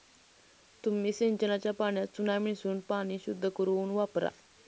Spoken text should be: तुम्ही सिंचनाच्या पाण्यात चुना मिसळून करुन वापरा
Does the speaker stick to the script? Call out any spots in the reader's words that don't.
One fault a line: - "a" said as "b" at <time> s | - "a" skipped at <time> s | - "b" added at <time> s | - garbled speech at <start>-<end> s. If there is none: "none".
- "पाणी शुद्ध" added at 2.9 s